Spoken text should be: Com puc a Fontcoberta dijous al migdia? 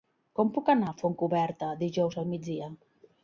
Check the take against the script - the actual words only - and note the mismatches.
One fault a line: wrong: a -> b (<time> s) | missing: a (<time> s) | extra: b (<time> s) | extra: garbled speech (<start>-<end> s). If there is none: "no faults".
extra: anar (0.7 s)